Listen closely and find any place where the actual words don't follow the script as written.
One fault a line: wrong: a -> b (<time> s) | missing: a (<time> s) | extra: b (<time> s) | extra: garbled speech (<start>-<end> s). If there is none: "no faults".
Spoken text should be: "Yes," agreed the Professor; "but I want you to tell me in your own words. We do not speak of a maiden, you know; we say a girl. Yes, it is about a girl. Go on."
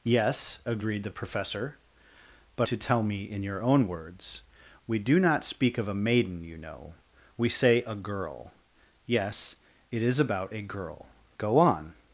missing: I want you (2.7 s)